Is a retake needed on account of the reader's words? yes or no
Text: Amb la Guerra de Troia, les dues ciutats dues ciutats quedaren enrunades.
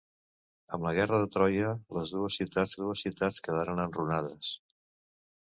no